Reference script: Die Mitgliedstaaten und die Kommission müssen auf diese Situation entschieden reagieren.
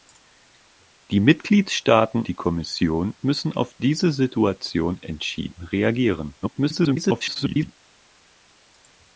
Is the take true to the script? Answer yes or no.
no